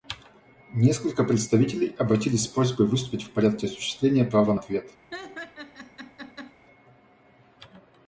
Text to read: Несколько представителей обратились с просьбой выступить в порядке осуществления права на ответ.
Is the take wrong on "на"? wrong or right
wrong